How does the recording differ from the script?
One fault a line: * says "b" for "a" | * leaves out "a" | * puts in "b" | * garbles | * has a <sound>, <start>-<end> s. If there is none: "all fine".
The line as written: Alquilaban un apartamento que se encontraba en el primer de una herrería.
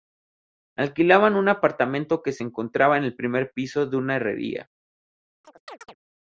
* puts in "piso"
* has a chirp, 5.4-6.0 s